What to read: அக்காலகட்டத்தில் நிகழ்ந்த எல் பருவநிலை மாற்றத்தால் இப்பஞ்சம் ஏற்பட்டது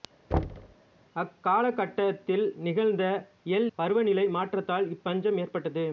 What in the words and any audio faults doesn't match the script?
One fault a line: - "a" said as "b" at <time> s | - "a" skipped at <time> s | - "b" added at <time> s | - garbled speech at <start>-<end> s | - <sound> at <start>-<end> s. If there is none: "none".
- thud at 0.3-0.8 s